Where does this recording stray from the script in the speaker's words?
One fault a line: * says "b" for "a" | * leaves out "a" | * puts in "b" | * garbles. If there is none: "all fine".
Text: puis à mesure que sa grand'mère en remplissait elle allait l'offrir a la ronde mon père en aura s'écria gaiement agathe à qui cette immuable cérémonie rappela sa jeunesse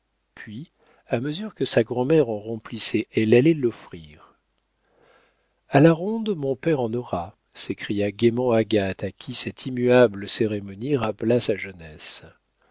all fine